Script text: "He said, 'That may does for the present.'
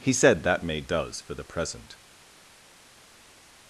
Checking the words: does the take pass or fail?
pass